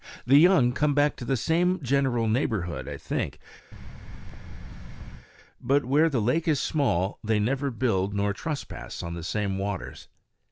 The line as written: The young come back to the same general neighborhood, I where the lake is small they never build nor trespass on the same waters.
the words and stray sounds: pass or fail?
fail